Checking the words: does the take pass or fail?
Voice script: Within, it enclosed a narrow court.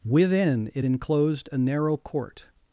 pass